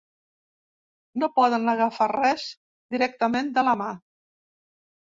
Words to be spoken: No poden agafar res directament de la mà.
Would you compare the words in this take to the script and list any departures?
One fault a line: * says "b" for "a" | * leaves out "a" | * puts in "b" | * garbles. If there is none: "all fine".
all fine